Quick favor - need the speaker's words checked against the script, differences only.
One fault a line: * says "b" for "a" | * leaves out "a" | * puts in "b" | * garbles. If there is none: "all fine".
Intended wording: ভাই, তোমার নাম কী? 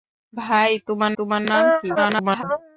* puts in "তোমার"
* garbles